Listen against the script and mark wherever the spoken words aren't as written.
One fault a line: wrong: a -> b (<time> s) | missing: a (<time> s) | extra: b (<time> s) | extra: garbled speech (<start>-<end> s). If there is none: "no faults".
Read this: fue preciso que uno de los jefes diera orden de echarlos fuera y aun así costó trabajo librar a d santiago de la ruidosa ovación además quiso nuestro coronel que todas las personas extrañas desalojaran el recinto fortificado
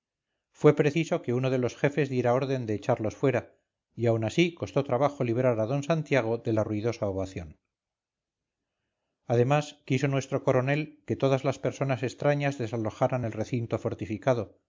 no faults